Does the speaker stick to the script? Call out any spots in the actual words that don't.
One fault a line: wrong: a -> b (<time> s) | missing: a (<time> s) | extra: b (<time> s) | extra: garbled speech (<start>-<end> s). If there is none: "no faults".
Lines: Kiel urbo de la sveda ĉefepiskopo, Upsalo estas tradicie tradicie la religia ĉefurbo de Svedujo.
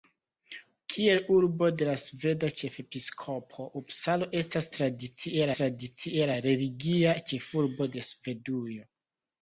no faults